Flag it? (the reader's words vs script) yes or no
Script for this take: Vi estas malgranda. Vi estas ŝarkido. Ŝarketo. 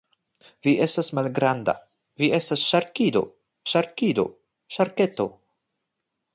yes